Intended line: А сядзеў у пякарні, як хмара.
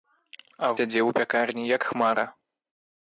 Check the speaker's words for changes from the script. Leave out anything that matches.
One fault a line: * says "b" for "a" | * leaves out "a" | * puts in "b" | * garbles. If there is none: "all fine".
all fine